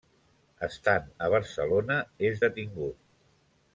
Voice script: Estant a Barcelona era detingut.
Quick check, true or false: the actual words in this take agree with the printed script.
false